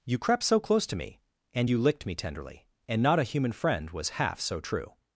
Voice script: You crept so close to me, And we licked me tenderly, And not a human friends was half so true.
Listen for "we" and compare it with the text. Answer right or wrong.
wrong